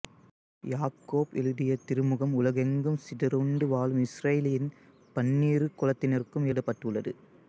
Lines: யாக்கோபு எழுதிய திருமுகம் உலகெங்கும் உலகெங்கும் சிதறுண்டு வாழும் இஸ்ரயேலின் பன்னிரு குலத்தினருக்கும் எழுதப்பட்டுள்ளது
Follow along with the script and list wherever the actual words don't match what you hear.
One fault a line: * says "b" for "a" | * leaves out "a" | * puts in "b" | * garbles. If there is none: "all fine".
* leaves out "உலகெங்கும்"